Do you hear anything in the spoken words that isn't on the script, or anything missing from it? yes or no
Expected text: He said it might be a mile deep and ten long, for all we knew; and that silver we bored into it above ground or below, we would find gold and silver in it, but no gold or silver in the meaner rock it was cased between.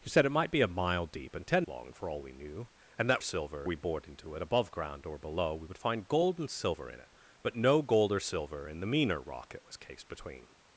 no